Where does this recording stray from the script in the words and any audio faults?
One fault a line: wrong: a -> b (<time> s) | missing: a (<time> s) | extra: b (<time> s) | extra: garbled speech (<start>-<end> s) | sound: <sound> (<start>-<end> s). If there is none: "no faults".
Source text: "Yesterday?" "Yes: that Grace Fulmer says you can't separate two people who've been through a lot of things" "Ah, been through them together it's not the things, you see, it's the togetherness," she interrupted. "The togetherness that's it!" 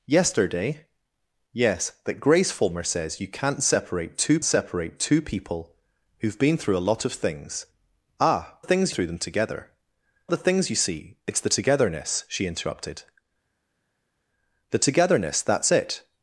extra: separate two (4.4 s)
wrong: been -> things (8.6 s)
missing: it's not (9.7 s)